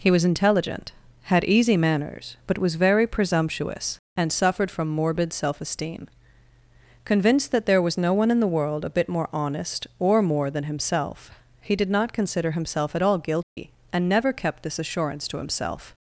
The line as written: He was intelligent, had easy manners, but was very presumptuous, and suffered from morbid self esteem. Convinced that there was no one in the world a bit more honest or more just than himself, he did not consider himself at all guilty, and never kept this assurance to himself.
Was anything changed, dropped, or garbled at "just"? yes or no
yes